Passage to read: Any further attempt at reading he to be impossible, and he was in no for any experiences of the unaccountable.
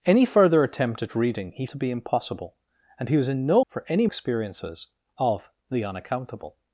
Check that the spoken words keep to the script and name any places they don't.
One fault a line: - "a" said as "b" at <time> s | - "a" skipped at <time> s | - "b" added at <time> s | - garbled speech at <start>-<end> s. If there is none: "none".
none